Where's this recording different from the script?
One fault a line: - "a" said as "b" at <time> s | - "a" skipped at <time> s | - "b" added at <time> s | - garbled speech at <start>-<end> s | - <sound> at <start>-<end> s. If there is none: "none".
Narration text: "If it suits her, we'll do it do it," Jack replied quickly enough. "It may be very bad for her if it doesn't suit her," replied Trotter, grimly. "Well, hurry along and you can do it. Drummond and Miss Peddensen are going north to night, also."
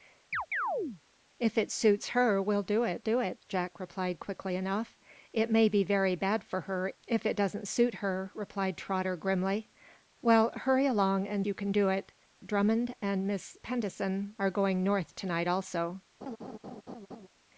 - chirp at 0.3-1.0 s
- laugh at 16.2-17.3 s